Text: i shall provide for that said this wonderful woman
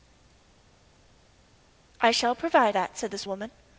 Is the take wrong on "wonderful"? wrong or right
wrong